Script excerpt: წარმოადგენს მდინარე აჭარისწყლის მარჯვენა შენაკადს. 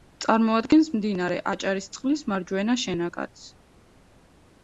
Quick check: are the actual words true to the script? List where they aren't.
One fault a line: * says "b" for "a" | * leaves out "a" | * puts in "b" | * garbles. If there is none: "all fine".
all fine